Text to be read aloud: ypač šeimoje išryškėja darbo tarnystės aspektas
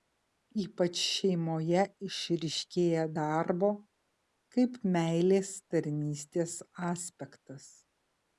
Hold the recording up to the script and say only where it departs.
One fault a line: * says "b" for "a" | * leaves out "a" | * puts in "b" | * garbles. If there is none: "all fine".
* puts in "kaip meilės"